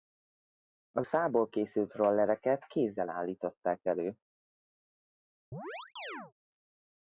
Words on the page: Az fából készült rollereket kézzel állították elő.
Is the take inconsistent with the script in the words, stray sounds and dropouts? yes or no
yes